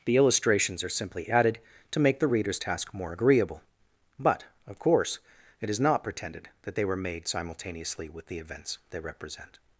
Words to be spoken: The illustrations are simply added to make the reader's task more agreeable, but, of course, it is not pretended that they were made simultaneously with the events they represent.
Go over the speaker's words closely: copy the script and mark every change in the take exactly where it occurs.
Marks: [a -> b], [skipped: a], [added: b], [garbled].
The illustrations are simply added to make the reader's task more agreeable, but, of course, it is not pretended that they were made simultaneously with the events they represent.